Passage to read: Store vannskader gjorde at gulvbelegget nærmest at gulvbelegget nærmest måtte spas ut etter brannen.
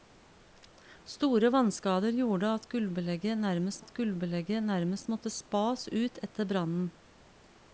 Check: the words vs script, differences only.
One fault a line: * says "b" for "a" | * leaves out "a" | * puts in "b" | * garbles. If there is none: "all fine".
all fine